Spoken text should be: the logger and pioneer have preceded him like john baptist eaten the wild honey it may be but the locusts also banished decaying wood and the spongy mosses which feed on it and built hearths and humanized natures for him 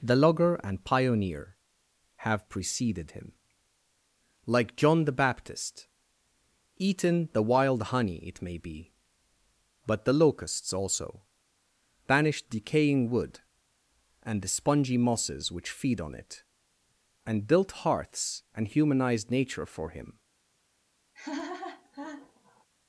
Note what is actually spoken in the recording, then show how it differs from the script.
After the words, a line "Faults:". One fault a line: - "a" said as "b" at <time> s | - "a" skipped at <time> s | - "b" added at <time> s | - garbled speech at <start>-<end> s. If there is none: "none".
the logger and pioneer have preceded him like john the baptist eaten the wild honey it may be but the locusts also banished decaying wood and the spongy mosses which feed on it and built hearths and humanized nature for him
Faults:
- "the" added at 5.0 s
- "natures" said as "nature" at 19.3 s